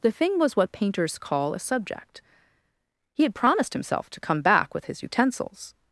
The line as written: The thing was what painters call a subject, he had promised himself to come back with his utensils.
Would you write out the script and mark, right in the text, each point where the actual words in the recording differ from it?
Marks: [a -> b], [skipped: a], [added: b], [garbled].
The thing was what painters call a subject, he had promised himself to come back with his utensils.